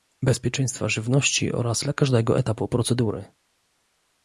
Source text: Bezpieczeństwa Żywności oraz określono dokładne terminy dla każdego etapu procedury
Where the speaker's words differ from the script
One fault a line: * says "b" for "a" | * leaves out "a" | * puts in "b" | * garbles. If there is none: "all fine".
* leaves out "określono dokładne terminy"